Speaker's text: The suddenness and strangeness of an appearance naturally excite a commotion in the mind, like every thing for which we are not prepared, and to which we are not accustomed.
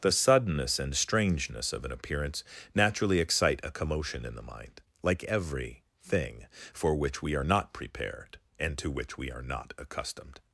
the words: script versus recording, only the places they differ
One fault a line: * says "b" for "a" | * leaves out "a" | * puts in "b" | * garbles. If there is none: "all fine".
all fine